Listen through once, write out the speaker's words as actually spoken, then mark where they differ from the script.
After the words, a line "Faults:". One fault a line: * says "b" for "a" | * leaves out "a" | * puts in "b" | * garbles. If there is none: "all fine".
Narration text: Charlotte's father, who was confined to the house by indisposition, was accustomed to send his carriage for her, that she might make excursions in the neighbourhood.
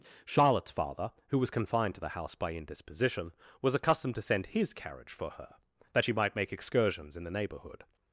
Charlotte's father, who was confined to the house by indisposition, was accustomed to send his carriage for her, that she might make excursions in the neighbourhood.
Faults:
all fine